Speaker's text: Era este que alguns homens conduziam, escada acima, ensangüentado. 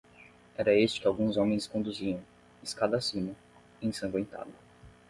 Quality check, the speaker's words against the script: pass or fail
pass